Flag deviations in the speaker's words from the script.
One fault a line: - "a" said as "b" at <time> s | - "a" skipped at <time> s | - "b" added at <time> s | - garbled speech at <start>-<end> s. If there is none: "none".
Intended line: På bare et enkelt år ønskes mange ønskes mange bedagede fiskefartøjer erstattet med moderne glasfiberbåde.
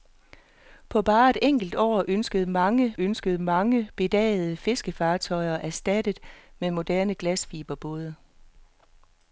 none